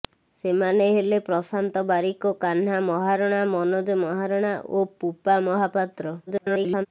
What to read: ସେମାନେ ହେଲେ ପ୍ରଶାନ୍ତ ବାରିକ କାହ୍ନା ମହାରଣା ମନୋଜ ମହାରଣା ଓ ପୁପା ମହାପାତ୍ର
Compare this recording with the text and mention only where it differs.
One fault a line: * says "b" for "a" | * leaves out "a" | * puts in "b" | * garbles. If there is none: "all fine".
* garbles